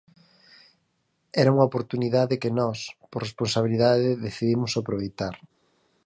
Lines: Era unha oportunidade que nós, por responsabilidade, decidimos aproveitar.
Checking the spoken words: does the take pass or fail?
pass